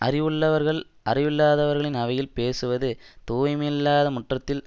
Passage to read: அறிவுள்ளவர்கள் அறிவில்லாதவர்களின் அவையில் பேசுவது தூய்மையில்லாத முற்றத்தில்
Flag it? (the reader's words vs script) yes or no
no